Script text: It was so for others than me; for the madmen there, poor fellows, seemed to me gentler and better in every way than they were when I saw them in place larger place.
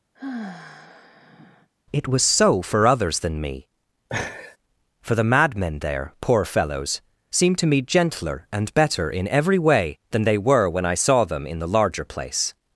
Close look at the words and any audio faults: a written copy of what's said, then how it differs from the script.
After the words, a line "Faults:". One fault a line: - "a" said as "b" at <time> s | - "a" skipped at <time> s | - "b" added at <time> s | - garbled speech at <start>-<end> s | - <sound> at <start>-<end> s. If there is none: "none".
It was so for others than me; for the madmen there, poor fellows, seemed to me gentler and better in every way than they were when I saw them in the larger place.
Faults:
- sigh at 0.1-1.7 s
- laugh at 4.1-4.6 s
- "place" said as "the" at 11.6 s